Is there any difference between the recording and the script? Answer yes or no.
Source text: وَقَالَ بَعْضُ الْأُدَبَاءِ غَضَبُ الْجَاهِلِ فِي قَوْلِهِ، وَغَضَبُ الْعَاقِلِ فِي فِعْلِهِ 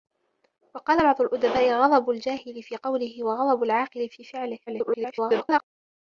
yes